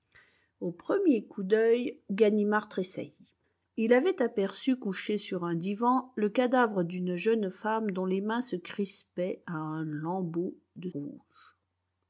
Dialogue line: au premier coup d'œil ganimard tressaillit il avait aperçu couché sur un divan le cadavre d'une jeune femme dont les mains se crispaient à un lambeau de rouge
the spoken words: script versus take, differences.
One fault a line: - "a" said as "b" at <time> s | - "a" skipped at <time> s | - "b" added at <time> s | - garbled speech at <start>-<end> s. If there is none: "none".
none